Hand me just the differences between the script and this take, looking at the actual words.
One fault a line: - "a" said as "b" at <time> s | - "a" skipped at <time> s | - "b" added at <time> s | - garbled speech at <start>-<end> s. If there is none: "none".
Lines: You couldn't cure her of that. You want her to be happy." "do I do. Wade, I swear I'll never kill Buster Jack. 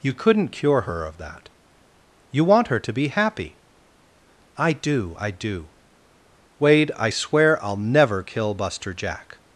- "I" added at 4.6 s